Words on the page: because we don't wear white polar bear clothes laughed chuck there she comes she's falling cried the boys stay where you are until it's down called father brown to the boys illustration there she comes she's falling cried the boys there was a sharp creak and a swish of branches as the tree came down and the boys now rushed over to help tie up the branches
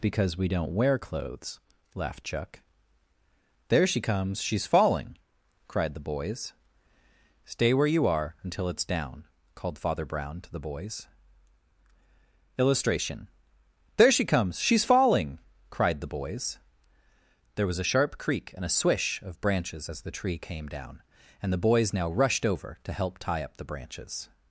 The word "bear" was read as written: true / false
false